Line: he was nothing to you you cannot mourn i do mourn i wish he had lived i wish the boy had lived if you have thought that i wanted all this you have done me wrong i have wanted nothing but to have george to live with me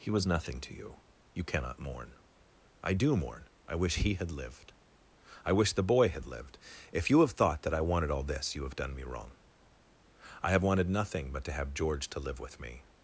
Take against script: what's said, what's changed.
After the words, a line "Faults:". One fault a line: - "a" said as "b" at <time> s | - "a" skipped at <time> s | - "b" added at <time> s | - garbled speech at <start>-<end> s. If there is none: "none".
he was nothing to you you cannot mourn i do mourn i wish he had lived i wish the boy had lived if you have thought that i wanted all this you have done me wrong i have wanted nothing but to have george to live with me
Faults:
none